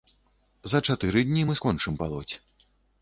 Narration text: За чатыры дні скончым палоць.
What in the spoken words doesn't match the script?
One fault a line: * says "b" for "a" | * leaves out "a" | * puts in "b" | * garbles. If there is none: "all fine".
* puts in "мы"